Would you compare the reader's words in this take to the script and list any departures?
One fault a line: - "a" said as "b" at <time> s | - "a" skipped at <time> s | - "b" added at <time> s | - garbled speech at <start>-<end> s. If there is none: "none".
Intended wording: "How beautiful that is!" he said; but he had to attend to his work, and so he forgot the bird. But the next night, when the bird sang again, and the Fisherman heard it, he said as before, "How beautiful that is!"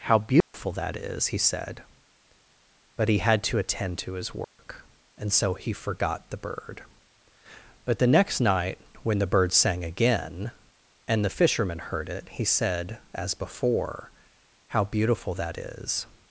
none